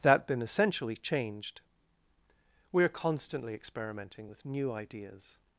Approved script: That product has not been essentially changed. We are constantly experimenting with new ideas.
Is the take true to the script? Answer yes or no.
no